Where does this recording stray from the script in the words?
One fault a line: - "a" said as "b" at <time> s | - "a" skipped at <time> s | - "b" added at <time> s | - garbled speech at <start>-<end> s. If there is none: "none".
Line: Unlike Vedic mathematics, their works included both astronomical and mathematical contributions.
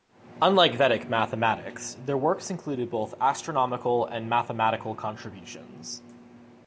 none